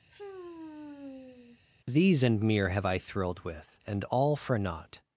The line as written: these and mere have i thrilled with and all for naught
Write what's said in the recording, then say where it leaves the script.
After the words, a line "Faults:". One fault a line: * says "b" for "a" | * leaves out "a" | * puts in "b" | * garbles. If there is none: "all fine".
these and mere have i thrilled with and all for naught
Faults:
all fine